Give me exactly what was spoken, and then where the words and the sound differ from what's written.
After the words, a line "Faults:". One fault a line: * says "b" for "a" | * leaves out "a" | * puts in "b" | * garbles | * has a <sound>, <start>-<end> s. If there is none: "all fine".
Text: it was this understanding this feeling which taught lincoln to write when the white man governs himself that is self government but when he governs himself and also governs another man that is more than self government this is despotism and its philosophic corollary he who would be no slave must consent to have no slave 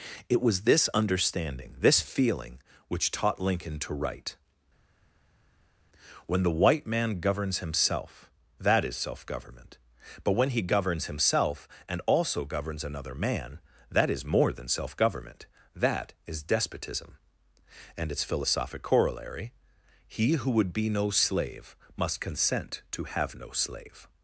it was this understanding this feeling which taught lincoln to write when the white man governs himself that is self government but when he governs himself and also governs another man that is more than self government that is despotism and its philosophic corollary he who would be no slave must consent to have no slave
Faults:
* says "that" for "this"